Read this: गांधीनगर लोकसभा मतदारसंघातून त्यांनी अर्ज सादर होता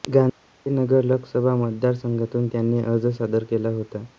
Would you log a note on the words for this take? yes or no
yes